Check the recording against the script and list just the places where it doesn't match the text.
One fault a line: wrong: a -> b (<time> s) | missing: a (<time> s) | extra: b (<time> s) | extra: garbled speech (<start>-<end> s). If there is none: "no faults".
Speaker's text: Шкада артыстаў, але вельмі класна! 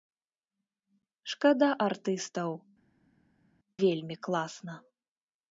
missing: але (2.5 s)